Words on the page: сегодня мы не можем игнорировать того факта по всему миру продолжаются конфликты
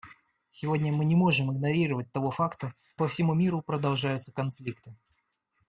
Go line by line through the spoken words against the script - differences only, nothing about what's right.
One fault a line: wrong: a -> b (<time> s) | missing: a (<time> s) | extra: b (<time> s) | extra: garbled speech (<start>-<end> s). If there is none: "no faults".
no faults